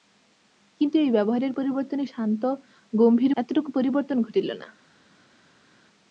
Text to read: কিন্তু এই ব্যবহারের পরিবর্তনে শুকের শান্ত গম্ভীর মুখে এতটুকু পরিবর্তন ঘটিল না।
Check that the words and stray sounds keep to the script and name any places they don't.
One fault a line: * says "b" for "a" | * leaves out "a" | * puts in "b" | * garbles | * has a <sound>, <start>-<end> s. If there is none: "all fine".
* leaves out "শুকের"
* leaves out "মুখে"